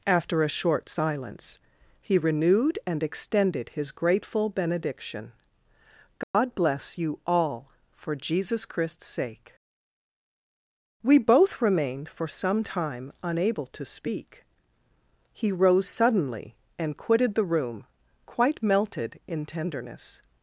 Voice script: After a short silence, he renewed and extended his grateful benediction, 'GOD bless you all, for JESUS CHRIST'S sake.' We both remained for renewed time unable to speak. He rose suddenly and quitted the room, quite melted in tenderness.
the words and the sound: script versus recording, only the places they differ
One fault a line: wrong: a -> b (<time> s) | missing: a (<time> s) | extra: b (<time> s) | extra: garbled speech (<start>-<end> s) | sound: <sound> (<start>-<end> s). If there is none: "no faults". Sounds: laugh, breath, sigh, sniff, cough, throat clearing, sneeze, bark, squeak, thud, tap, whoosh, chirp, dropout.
sound: dropout (6.2-6.3 s)
wrong: renewed -> some (12.3 s)